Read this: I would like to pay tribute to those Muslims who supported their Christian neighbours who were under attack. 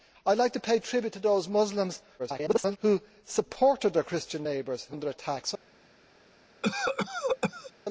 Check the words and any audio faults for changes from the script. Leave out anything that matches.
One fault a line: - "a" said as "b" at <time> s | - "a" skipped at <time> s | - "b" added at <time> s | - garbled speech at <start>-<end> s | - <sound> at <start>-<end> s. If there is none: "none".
- garbled speech at 2.2-2.8 s
- "were" skipped at 5.0 s
- cough at 6.6-7.7 s